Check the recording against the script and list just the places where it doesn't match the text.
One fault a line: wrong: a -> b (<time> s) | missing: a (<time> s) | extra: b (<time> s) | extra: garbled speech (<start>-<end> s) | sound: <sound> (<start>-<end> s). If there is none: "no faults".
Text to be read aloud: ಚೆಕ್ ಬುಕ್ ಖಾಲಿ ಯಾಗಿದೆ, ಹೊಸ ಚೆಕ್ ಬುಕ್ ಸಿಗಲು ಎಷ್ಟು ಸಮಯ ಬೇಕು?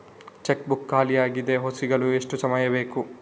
missing: ಚೆಕ್ ಬುಕ್ (1.8 s)